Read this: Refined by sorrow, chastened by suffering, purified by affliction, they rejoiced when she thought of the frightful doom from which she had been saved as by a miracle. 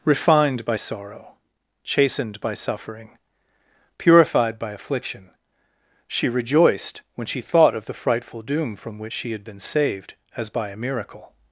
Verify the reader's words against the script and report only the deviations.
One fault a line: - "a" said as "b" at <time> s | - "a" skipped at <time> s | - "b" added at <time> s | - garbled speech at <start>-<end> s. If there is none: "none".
- "they" said as "she" at 6.1 s